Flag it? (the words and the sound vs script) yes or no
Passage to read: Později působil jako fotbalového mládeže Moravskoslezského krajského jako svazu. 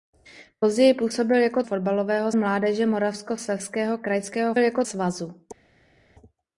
no